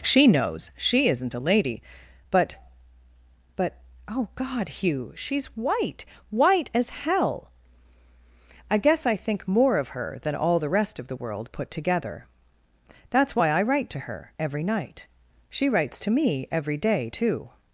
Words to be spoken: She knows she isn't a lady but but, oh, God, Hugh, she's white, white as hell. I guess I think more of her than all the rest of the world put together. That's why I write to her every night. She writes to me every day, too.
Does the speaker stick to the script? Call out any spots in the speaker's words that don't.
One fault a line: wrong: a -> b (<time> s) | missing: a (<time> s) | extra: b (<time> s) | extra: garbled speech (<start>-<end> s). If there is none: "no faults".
no faults